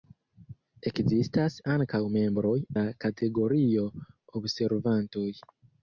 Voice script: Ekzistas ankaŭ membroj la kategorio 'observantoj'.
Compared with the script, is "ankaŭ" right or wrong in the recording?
right